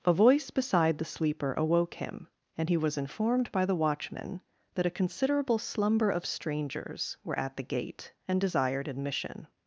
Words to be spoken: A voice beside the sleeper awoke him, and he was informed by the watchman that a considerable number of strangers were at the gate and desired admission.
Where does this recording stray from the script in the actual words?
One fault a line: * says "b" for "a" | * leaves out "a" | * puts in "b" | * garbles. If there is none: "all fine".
* says "slumber" for "number"